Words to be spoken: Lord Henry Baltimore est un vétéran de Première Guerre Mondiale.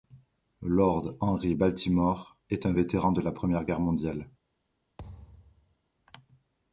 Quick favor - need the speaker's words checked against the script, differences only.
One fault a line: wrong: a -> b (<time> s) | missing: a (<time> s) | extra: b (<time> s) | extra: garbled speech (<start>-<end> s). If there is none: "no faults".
extra: la (3.2 s)